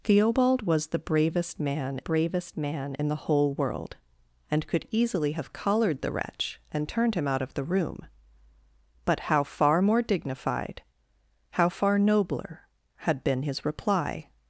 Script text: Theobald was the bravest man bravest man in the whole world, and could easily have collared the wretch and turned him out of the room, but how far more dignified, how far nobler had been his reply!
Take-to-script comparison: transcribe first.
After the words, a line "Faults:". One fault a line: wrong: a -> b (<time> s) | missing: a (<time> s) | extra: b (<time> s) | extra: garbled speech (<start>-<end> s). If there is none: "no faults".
Theobald was the bravest man bravest man in the whole world, and could easily have collared the wretch and turned him out of the room, but how far more dignified, how far nobler had been his reply!
Faults:
no faults